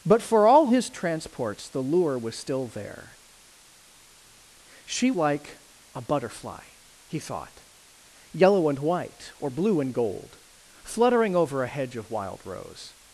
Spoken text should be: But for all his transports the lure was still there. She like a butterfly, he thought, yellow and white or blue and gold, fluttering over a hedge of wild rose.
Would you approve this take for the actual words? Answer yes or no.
yes